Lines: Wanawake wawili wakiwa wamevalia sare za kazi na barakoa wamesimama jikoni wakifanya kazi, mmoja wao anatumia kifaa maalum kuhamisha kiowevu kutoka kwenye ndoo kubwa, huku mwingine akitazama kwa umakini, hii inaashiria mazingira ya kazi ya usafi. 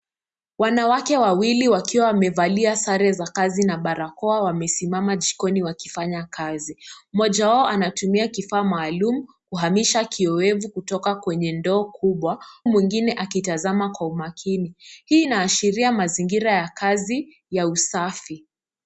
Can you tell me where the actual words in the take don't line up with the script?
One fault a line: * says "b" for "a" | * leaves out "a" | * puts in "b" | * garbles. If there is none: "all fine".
* leaves out "huku"